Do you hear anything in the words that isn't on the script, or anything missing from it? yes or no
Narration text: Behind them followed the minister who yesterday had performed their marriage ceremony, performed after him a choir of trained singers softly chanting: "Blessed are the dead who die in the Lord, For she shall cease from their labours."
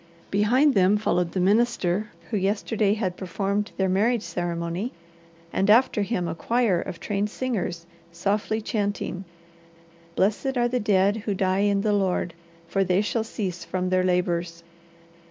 yes